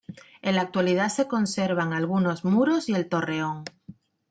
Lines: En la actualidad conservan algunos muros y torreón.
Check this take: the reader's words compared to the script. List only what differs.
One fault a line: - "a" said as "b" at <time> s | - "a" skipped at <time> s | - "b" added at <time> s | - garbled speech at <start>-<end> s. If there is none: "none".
- "se" added at 1.1 s
- "el" added at 3.0 s